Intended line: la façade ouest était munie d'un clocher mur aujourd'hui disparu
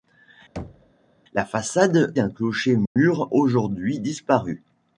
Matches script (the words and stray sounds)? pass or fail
fail